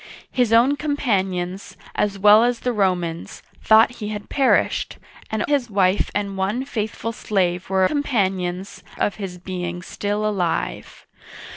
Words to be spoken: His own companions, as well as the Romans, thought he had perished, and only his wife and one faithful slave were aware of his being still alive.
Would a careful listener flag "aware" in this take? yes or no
yes